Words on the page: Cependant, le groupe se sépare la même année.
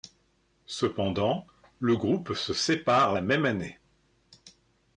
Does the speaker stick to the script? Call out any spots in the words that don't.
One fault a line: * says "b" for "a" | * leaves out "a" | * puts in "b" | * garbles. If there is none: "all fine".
all fine